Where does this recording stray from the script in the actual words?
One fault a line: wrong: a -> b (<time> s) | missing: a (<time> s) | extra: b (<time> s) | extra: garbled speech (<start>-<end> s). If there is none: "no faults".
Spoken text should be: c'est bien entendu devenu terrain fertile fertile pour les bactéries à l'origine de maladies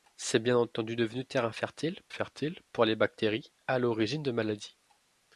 no faults